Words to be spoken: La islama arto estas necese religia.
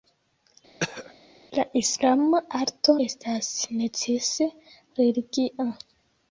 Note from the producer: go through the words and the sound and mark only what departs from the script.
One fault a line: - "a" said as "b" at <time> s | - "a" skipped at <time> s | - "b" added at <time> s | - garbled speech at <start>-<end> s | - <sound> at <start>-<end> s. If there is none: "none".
- throat clearing at 0.8-1.1 s